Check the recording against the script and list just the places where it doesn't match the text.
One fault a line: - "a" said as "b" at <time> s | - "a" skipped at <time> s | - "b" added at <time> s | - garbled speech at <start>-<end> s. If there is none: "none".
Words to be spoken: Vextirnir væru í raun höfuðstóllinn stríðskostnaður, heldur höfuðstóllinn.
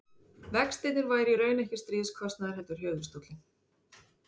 - "höfuðstóllinn" said as "ekki" at 1.6 s